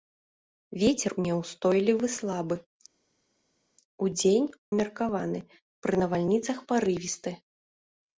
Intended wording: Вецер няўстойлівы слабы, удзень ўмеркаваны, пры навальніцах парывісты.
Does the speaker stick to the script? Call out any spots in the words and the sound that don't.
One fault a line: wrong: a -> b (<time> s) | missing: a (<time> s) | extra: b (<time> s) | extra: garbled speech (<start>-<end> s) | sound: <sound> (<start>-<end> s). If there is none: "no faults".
no faults